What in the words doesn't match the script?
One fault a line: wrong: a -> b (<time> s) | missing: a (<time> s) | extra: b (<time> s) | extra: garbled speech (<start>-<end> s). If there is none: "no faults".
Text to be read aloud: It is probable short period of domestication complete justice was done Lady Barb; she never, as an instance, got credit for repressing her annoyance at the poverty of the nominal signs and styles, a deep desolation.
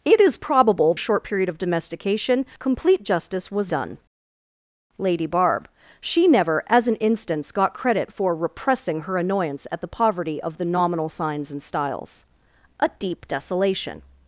no faults